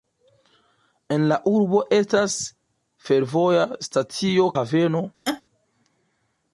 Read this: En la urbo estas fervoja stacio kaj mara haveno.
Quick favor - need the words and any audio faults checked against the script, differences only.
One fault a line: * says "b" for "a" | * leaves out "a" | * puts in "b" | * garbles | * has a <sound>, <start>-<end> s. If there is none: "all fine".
* leaves out "kaj mara"
* has a laugh, 5.3-5.4 s